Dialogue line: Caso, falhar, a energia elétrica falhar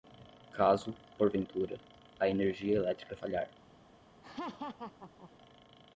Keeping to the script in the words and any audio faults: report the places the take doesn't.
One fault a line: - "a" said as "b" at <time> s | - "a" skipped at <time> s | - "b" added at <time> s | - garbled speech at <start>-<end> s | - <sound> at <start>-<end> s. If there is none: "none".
- "falhar" said as "porventura" at 1.2 s
- laugh at 4.2-5.3 s